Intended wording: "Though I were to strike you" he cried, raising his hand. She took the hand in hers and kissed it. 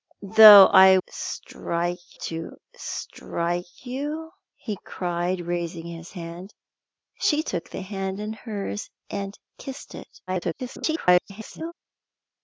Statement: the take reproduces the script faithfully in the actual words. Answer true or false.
false